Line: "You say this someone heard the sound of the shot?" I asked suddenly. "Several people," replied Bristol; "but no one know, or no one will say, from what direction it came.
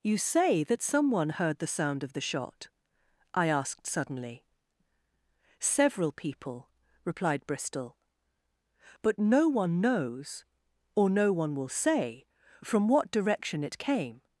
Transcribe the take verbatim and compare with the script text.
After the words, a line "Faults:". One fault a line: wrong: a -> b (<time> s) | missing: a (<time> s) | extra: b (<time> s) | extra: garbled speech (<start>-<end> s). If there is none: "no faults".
"You say that someone heard the sound of the shot?" I asked suddenly. "Several people," replied Bristol; "but no one knows, or no one will say, from what direction it came.
Faults:
wrong: this -> that (0.6 s)
wrong: know -> knows (9.8 s)